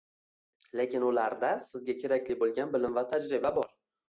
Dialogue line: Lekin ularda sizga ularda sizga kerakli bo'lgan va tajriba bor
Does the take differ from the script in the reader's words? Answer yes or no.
yes